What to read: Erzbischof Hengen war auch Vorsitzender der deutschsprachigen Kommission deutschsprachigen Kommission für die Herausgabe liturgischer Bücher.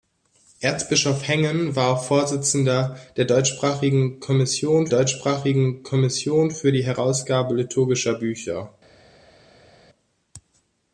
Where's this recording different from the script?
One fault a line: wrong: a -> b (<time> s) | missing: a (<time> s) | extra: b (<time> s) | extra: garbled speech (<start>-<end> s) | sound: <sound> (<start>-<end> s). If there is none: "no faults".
no faults